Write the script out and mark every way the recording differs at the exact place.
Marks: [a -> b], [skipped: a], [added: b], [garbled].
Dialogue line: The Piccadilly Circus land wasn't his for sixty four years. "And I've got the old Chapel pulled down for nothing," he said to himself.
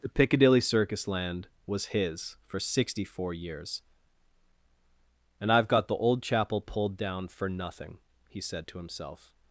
The Piccadilly Circus land [wasn't -> was] his for sixty four years. "And I've got the old Chapel pulled down for nothing," he said to himself.